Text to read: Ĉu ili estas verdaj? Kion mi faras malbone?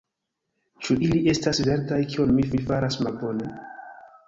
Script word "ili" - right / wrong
right